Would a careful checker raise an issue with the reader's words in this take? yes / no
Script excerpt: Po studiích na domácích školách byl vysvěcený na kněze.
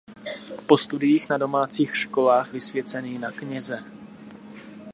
yes